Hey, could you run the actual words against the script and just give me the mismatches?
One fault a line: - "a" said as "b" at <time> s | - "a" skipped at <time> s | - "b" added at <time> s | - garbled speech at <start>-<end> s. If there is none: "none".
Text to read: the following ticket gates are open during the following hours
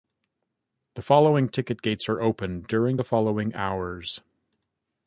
none